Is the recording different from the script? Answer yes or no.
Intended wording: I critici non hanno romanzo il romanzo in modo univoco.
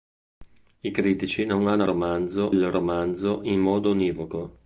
no